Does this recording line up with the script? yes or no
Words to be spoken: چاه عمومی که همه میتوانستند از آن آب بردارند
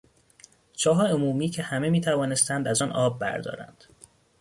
yes